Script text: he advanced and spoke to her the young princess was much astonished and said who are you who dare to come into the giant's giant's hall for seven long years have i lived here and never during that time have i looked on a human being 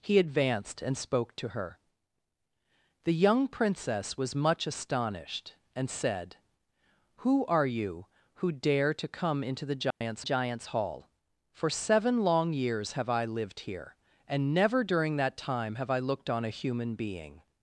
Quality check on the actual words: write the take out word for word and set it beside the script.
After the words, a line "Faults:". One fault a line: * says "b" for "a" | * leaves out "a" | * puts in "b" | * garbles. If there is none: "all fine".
he advanced and spoke to her the young princess was much astonished and said who are you who dare to come into the giant's giant's hall for seven long years have i lived here and never during that time have i looked on a human being
Faults:
all fine